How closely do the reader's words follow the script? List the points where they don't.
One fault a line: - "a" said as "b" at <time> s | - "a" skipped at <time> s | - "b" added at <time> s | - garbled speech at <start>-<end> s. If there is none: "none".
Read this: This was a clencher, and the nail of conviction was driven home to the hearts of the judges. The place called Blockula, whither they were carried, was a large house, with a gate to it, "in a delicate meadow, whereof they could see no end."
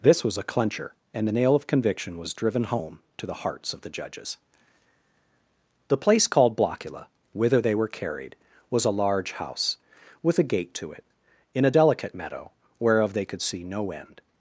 none